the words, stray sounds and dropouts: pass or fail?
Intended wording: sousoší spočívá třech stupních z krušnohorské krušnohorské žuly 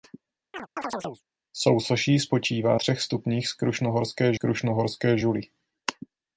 fail